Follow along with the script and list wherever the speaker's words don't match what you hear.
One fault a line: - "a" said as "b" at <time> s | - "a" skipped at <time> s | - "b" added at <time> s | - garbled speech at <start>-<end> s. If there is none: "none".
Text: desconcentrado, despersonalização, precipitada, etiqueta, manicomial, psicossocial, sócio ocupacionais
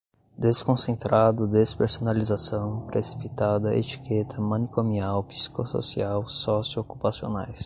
none